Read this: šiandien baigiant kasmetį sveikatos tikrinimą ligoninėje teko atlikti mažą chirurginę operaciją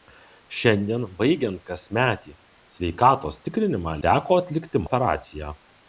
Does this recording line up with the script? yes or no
no